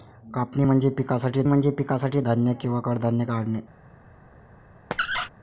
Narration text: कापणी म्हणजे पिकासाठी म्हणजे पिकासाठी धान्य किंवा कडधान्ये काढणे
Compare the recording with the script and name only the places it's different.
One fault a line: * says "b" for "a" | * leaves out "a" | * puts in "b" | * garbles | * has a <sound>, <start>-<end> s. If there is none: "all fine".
* has a squeak, 4.9-5.3 s